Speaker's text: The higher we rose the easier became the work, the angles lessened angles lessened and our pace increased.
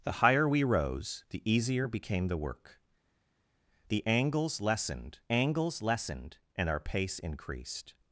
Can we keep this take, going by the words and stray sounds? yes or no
yes